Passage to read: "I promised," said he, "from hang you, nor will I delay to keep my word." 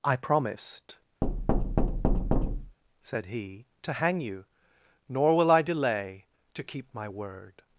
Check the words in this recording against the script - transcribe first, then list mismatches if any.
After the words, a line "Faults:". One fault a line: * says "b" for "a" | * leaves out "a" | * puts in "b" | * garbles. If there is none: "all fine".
"I promised," said he, "to hang you, nor will I delay to keep my word."
Faults:
* says "to" for "from"